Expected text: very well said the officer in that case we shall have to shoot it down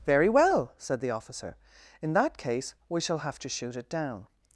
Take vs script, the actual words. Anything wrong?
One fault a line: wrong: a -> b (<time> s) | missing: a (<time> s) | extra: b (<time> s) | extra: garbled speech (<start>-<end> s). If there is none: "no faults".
no faults